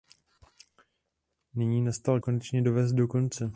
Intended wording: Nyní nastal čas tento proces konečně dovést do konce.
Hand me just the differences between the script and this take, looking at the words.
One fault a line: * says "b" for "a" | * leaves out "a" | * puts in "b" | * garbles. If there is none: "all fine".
* leaves out "čas tento proces"